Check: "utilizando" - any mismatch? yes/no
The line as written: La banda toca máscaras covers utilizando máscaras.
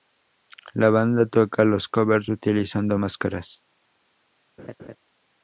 no